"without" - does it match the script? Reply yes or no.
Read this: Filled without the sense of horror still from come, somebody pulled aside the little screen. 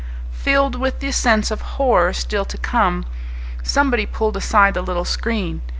no